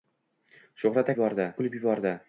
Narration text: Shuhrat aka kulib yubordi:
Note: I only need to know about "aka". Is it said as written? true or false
false